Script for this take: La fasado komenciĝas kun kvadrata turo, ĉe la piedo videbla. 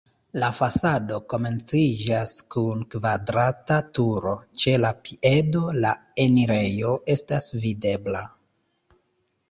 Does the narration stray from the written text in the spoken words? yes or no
yes